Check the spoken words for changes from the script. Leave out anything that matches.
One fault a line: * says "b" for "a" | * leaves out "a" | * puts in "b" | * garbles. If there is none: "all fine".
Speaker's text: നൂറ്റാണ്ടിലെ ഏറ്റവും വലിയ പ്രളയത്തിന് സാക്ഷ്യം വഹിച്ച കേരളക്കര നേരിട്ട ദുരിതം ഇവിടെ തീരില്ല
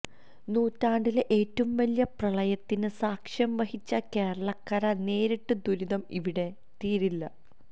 all fine